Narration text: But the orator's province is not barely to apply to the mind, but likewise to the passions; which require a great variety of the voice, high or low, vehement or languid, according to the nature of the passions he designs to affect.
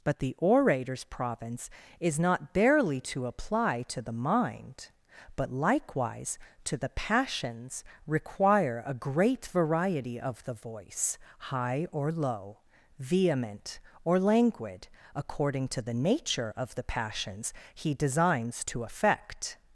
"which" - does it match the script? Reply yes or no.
no